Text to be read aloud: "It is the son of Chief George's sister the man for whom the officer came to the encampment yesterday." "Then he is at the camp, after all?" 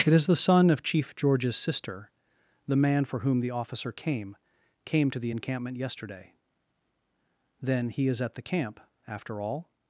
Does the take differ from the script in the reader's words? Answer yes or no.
yes